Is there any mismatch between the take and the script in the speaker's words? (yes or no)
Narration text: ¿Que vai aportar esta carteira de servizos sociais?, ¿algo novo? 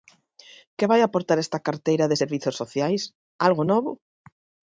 no